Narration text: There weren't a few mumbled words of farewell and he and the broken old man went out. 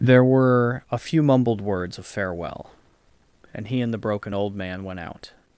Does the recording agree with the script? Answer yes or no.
no